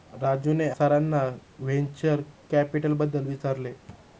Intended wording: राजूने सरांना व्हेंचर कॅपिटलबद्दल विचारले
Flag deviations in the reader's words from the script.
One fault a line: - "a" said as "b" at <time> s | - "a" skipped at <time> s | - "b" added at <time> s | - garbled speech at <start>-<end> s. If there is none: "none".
none